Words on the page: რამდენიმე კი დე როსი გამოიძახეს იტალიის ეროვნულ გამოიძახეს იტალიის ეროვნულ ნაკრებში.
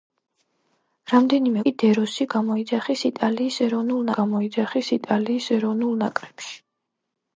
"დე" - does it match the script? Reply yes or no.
yes